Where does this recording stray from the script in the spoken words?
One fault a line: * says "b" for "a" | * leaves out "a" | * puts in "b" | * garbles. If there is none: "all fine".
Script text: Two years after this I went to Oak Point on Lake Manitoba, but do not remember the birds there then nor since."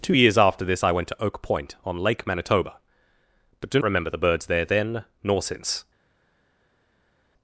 * leaves out "not"